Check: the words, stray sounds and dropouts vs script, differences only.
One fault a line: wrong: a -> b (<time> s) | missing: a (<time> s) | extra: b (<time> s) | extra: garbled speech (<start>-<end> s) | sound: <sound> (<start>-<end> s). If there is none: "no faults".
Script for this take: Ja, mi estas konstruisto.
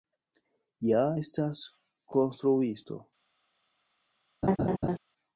missing: mi (1.0 s)
sound: laugh (4.4-5.0 s)